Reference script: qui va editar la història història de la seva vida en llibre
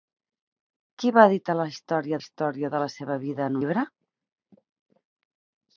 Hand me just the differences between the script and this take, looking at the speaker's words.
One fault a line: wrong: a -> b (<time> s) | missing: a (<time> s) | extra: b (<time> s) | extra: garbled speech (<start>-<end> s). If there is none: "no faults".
no faults